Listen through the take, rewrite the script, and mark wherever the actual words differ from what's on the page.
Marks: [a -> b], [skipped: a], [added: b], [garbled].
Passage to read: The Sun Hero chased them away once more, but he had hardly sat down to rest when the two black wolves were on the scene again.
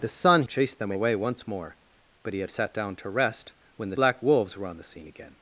The Sun [skipped: Hero] chased them away once more, but he had [skipped: hardly] sat down to rest when the [skipped: two] black wolves were on the scene again.